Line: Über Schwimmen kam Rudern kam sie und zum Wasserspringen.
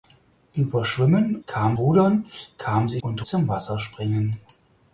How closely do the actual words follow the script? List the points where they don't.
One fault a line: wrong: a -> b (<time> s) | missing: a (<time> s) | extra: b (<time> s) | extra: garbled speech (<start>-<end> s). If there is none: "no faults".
no faults